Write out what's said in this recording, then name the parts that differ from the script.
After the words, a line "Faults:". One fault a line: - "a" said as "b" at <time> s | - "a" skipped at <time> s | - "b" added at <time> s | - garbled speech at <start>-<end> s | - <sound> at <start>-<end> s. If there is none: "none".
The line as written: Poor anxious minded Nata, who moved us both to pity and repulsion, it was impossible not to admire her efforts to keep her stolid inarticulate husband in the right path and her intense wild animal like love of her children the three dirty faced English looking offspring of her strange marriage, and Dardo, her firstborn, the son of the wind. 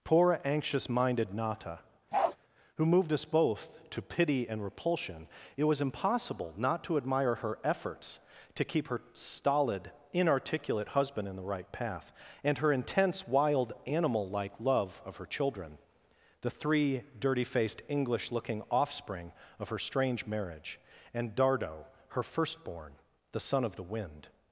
Poor anxious minded Nata, who moved us both to pity and repulsion, it was impossible not to admire her efforts to keep her stolid inarticulate husband in the right path and her intense wild animal like love of her children the three dirty faced English looking offspring of her strange marriage, and Dardo, her firstborn, the son of the wind.
Faults:
- bark at 2.1-2.4 s